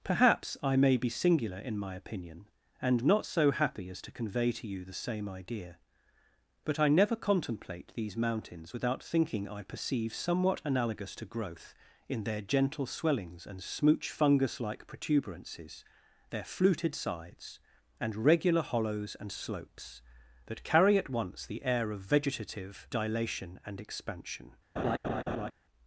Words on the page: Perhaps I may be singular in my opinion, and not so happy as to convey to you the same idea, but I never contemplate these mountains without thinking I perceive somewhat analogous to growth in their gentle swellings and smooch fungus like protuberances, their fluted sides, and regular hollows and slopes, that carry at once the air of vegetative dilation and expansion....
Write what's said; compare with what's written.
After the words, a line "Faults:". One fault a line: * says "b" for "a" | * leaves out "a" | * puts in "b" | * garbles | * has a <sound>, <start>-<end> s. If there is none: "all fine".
Perhaps I may be singular in my opinion, and not so happy as to convey to you the same idea, but I never contemplate these mountains without thinking I perceive somewhat analogous to growth in their gentle swellings and smooch fungus like protuberances, their fluted sides, and regular hollows and slopes, that carry at once the air of vegetative dilation and expansion....
Faults:
* has a laugh, 24.8-25.5 s